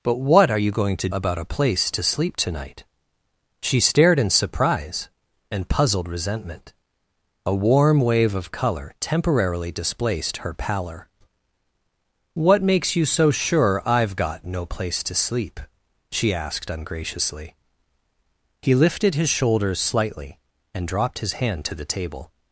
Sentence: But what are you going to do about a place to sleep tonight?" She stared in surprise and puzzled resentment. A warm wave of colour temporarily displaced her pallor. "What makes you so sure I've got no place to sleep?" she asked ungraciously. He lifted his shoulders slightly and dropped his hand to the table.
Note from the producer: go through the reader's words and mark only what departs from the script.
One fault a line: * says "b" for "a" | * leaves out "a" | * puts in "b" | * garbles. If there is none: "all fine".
* leaves out "do"